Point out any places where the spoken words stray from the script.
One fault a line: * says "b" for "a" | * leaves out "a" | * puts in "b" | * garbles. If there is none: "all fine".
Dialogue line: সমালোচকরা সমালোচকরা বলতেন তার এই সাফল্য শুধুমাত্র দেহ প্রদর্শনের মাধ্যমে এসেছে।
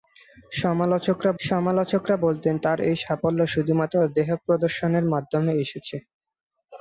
all fine